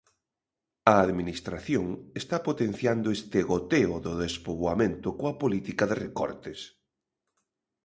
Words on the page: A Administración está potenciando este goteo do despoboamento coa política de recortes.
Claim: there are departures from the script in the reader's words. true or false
false